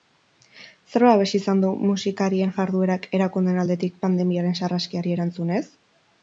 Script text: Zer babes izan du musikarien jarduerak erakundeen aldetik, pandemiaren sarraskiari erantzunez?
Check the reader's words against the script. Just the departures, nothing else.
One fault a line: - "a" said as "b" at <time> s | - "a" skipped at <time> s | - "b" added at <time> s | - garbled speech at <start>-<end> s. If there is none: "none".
none